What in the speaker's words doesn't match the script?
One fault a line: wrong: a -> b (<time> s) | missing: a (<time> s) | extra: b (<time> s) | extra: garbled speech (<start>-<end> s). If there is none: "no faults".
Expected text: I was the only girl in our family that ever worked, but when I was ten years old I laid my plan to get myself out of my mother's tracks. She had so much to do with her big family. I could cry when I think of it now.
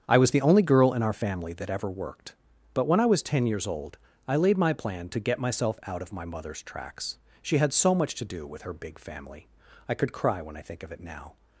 no faults